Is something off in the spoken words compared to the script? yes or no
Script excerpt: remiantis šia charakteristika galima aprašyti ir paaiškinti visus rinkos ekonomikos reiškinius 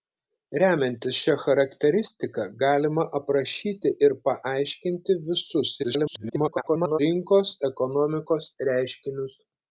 yes